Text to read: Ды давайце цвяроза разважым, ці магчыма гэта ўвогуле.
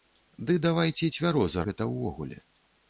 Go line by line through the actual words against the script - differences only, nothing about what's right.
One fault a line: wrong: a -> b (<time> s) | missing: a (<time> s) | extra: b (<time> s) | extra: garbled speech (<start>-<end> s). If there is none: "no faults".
missing: разважым ці магчыма (1.6 s)